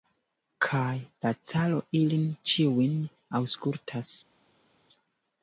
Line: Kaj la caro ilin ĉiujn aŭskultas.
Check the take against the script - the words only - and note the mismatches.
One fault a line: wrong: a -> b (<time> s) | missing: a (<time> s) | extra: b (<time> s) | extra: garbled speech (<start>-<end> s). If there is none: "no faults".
no faults